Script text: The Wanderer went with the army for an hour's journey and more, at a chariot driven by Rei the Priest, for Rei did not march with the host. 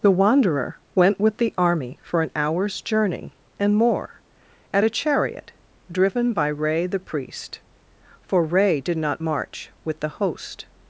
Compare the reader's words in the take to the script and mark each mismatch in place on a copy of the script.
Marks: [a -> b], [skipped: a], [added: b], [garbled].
The Wanderer went with the army for an hour's journey and more, at a chariot driven by Rei the Priest, for Rei did not march with the host.